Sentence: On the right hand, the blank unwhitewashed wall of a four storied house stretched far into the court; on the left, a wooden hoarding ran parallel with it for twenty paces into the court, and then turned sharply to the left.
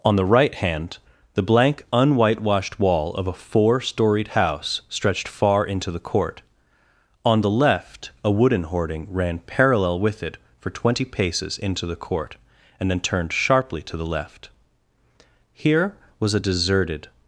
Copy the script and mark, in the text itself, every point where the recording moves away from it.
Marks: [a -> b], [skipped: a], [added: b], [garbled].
On the right hand, the blank unwhitewashed wall of a four storied house stretched far into the court; on the left, a wooden hoarding ran parallel with it for twenty paces into the court, and then turned sharply to the left. [added: Here was a deserted]